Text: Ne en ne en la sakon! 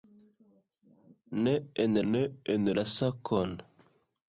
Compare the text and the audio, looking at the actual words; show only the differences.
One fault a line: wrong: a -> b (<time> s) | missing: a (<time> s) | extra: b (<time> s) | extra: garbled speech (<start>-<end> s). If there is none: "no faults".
no faults